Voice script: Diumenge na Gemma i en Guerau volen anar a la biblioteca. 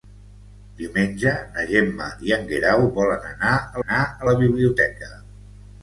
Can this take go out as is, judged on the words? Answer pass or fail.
fail